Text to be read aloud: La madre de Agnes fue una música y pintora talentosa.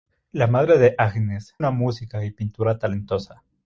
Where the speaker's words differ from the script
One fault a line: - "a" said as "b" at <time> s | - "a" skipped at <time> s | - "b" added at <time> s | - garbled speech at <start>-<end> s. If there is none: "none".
- "fue" skipped at 1.6 s